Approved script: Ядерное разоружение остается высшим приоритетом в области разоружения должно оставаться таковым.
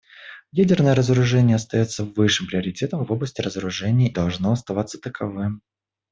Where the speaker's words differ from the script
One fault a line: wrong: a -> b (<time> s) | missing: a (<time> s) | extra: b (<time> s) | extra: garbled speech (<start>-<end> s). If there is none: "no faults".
no faults